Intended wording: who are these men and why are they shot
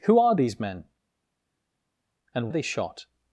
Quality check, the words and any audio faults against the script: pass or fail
fail